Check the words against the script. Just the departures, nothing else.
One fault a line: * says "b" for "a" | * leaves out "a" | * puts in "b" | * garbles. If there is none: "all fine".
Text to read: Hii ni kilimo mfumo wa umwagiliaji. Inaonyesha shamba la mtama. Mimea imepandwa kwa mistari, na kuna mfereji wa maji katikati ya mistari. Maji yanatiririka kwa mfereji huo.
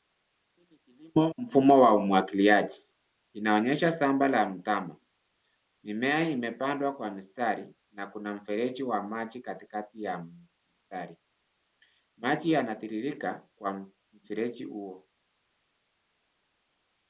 all fine